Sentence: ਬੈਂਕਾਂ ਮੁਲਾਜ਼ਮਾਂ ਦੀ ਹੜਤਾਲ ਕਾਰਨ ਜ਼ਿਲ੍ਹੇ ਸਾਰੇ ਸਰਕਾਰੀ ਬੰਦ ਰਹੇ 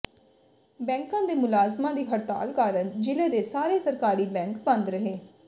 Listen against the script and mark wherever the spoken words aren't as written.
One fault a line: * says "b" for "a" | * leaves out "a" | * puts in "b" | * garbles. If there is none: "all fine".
* puts in "ਦੇ"
* puts in "ਦੇ"
* puts in "ਬੈਂਕ"